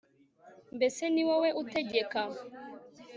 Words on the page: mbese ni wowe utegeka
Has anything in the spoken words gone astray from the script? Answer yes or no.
no